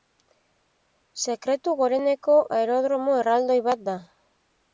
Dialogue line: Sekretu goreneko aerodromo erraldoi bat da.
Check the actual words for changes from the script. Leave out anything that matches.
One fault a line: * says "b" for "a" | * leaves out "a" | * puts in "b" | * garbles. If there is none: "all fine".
all fine